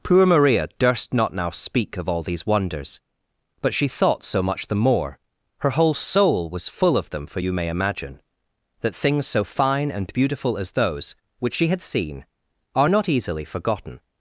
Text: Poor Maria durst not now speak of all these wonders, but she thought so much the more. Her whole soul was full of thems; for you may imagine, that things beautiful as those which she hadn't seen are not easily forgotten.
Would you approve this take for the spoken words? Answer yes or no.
no